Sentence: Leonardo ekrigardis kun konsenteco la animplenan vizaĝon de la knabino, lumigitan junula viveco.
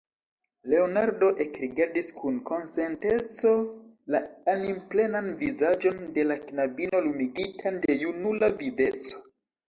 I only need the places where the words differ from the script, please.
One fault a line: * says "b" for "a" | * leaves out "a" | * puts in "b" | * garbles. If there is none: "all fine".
* puts in "de"